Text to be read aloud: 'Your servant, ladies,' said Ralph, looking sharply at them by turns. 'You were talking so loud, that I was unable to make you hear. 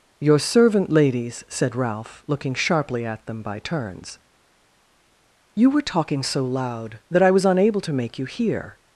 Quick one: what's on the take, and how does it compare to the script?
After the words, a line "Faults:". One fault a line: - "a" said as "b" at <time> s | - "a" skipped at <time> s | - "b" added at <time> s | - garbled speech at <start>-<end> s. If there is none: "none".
'Your servant, ladies,' said Ralph, looking sharply at them by turns. 'You were talking so loud, that I was unable to make you hear.
Faults:
none